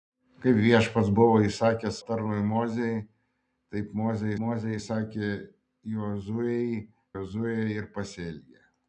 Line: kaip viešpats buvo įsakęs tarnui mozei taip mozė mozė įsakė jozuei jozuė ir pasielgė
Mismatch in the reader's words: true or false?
false